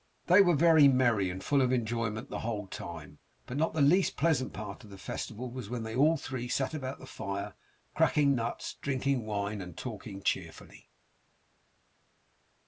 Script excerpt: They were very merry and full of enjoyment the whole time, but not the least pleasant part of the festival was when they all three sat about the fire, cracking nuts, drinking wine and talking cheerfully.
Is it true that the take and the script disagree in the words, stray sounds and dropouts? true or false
false